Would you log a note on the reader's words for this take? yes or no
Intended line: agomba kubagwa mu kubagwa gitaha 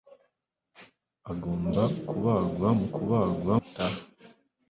no